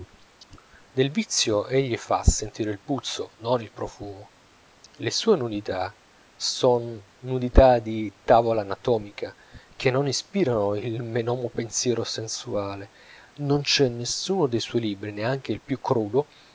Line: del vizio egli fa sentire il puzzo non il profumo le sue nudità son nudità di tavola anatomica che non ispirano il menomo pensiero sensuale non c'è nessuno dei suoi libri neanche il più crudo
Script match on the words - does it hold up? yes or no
yes